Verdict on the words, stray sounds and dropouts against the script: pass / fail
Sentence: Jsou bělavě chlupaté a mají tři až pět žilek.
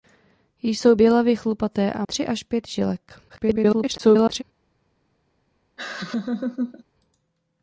fail